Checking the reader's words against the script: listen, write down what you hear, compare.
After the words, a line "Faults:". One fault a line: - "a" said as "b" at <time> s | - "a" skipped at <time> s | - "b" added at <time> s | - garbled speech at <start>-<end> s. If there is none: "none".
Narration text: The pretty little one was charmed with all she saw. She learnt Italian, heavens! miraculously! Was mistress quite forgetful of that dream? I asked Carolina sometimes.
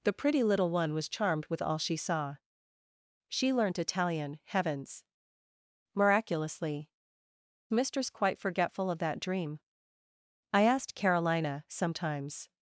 The pretty little one was charmed with all she saw. She learnt Italian, heavens! miraculously! Mistress quite forgetful of that dream? I asked Carolina sometimes.
Faults:
- "Was" skipped at 6.9 s